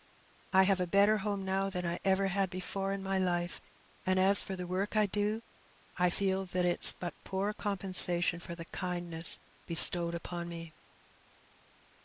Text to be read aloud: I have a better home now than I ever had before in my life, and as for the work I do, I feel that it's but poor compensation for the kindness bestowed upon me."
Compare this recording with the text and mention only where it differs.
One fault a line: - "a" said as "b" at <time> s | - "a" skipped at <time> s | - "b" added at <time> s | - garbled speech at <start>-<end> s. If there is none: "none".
none